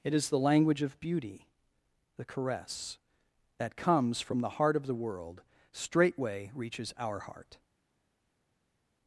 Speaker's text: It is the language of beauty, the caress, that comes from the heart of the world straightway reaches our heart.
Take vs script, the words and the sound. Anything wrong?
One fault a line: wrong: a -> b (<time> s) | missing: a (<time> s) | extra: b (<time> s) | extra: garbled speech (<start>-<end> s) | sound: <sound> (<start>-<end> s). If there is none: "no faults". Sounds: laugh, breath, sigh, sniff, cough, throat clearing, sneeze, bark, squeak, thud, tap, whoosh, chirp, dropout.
no faults